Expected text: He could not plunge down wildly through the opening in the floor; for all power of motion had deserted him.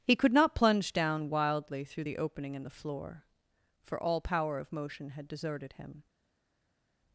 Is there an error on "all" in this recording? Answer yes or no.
no